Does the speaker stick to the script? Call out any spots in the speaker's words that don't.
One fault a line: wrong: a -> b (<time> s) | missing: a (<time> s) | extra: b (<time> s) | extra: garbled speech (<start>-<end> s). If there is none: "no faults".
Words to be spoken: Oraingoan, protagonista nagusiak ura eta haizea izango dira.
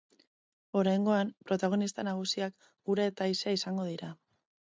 no faults